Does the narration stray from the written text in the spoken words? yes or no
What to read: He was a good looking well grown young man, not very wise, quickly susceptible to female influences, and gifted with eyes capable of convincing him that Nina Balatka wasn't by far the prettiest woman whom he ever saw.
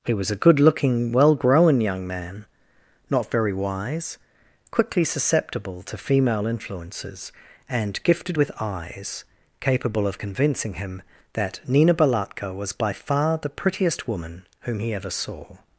yes